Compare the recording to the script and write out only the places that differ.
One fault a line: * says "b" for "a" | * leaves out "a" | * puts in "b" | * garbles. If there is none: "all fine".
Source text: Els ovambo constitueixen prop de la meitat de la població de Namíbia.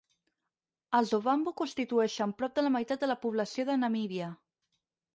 all fine